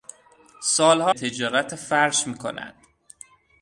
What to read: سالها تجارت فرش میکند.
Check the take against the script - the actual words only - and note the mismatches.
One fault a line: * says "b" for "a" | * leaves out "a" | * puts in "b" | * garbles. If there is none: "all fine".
all fine